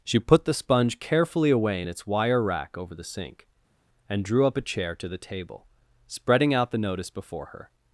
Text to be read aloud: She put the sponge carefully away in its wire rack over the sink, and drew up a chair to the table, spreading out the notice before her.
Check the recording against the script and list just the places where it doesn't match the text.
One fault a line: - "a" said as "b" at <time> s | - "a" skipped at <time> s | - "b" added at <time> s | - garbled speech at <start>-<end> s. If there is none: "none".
none